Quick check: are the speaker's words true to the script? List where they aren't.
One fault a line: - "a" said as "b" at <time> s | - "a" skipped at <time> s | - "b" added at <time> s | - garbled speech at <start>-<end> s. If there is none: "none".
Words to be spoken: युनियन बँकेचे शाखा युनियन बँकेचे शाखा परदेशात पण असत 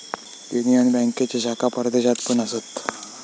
- "युनियन बँकेचे शाखा" skipped at 1.7 s